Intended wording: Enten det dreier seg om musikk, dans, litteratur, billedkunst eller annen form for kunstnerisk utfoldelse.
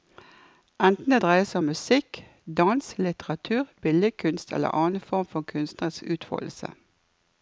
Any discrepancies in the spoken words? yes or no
no